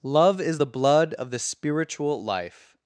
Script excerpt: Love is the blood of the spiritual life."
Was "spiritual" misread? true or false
false